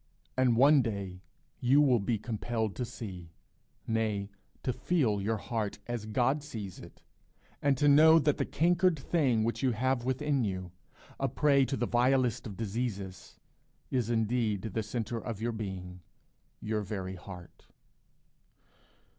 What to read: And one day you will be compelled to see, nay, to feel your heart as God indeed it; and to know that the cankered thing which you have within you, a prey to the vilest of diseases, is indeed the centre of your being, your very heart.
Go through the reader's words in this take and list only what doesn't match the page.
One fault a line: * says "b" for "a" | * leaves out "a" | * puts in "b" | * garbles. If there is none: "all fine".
* says "sees" for "indeed"